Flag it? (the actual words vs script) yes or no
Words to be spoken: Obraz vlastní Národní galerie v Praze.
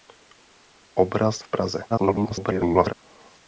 yes